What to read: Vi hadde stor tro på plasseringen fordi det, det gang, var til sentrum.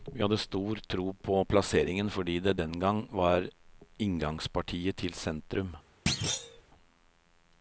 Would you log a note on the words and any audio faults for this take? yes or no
yes